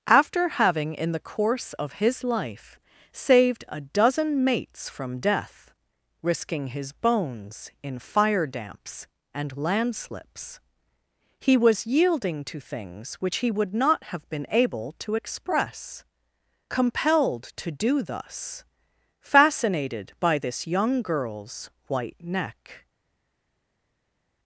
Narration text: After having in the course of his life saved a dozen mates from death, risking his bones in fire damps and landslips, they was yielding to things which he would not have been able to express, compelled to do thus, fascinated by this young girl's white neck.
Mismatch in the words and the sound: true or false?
true